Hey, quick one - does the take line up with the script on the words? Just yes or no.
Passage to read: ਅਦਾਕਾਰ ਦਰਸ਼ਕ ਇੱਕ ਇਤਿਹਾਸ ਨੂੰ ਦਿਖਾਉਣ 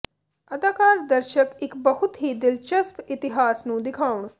no